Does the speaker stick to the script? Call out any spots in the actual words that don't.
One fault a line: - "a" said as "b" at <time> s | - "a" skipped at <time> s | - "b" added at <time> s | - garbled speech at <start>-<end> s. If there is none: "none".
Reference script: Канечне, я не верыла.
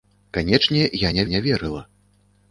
- "не" added at 1.3 s